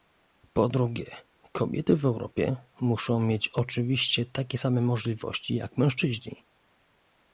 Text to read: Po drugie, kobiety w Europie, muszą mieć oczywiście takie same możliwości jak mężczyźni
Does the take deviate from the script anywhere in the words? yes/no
no